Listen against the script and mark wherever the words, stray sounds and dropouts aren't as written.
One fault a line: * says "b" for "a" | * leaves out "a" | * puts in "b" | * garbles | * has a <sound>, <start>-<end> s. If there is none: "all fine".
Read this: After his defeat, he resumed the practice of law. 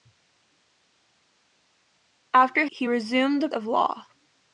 * leaves out "his defeat"
* leaves out "practice"